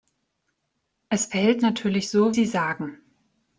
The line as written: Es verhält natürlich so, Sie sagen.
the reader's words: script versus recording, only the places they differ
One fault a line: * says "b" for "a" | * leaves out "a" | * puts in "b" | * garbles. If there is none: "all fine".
all fine